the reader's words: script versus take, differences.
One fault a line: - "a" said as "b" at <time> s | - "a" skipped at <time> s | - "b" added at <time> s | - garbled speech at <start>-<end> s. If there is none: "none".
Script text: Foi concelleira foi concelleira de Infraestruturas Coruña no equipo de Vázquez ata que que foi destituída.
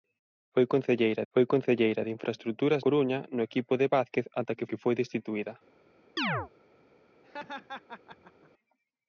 none